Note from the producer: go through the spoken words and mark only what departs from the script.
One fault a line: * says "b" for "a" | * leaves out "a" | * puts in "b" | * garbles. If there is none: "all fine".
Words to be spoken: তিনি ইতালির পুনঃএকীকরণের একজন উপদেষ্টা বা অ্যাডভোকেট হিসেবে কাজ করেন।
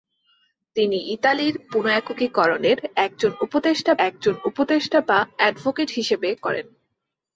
* puts in "একজন উপদেষ্টা"
* leaves out "কাজ"